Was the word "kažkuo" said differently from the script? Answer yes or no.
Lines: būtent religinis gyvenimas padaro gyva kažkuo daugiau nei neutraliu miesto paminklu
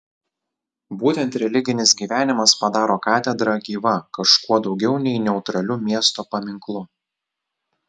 no